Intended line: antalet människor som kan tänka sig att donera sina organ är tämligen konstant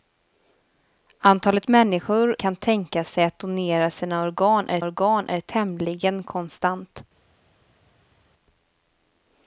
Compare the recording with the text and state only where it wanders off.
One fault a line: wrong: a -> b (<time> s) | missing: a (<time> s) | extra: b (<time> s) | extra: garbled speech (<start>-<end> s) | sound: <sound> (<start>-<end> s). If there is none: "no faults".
missing: som (2.4 s)
extra: organ är (4.8 s)